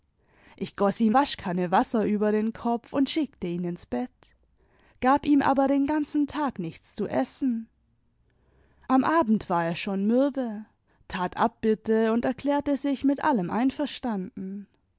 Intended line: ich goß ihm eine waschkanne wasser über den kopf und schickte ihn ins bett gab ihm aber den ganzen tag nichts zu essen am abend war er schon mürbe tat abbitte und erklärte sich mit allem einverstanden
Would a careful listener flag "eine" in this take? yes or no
yes